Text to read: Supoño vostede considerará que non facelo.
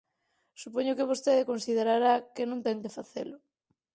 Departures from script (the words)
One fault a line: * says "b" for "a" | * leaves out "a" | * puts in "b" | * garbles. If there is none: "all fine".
* puts in "que"
* puts in "ten que"